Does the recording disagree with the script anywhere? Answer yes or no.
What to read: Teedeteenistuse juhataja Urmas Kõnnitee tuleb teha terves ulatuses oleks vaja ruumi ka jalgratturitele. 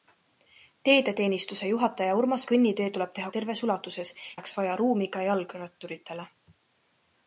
no